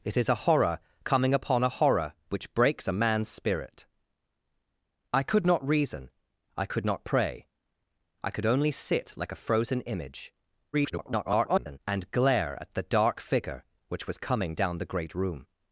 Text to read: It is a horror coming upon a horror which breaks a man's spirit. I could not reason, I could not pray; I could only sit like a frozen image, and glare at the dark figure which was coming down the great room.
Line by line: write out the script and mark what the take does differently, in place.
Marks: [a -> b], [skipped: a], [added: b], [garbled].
It is a horror coming upon a horror which breaks a man's spirit. I could not reason, I could not pray; I could only sit like a frozen image, [garbled] and glare at the dark figure which was coming down the great room.